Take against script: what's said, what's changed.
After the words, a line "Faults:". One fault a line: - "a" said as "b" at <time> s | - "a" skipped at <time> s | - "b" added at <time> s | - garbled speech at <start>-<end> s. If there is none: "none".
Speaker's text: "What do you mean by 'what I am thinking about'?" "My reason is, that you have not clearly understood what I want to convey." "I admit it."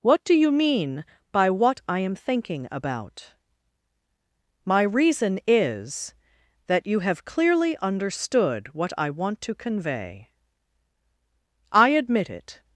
"What do you mean by 'what I am thinking about'?" "My reason is, that you have clearly understood what I want to convey." "I admit it."
Faults:
- "not" skipped at 7.2 s